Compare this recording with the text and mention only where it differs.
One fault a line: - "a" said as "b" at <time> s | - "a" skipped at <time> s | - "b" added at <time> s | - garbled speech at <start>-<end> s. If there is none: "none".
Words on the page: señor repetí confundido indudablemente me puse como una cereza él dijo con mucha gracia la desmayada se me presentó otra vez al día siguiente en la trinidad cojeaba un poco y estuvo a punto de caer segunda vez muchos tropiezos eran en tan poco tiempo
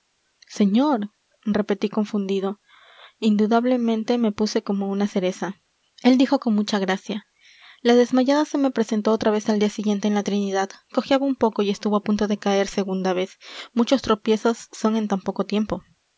- "eran" said as "son" at 14.7 s